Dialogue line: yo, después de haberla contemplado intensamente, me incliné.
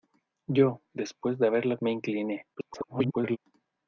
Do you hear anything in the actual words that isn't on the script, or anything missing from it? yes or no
yes